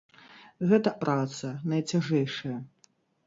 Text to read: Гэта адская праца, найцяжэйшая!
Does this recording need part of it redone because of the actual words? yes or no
yes